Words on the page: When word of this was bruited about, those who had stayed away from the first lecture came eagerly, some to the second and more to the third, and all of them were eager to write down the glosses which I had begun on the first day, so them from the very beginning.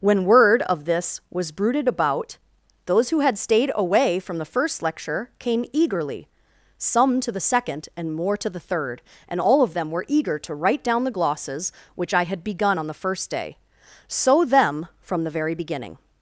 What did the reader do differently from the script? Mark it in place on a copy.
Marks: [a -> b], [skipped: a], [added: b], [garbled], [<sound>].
When word of this was bruited about, those who had stayed away from the first lecture came eagerly, some to the second and more to the third, and all of them were eager to write down the glosses which I had begun on the first day, so them from the very beginning.